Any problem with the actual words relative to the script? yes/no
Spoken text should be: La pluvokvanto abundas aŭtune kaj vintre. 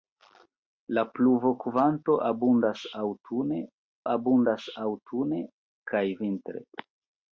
yes